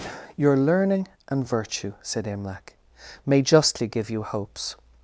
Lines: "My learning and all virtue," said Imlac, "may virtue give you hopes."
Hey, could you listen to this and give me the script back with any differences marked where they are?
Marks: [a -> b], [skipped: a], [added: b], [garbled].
["My -> Your] learning and [skipped: all] virtue," said Imlac, "may [virtue -> justly] give you hopes."